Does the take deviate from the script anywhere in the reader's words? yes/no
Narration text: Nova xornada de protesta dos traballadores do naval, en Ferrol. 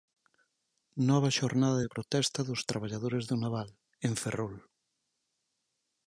no